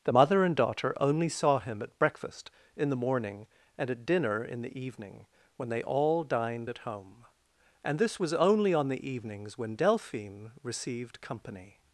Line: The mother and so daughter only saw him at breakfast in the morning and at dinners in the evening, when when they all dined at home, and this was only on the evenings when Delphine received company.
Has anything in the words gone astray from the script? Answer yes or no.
yes